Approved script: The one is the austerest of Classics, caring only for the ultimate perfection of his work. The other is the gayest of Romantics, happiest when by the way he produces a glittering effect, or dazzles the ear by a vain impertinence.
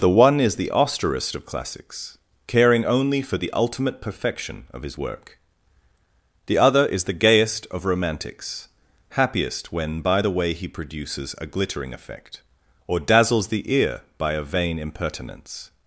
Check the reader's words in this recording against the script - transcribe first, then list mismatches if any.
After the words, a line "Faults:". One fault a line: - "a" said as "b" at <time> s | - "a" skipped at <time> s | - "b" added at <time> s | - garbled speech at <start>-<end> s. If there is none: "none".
The one is the austerest of Classics, caring only for the ultimate perfection of his work. The other is the gayest of Romantics, happiest when by the way he produces a glittering effect, or dazzles the ear by a vain impertinence.
Faults:
none